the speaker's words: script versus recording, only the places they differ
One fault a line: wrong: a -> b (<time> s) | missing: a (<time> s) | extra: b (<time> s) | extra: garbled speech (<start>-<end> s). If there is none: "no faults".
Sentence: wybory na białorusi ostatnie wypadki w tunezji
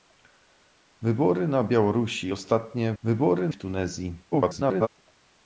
wrong: wypadki -> wybory (3.0 s)
extra: garbled speech (4.3-4.9 s)